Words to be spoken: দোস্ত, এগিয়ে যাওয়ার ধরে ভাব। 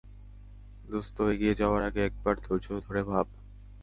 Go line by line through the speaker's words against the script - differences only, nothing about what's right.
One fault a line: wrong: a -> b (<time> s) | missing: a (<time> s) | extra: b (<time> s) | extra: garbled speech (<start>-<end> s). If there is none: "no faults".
extra: আগে একবার ধৈর্য (1.8 s)